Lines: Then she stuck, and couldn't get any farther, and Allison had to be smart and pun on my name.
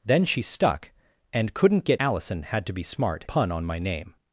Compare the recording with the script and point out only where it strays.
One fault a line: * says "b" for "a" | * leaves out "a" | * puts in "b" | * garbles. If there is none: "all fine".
* leaves out "any farther and"
* leaves out "and"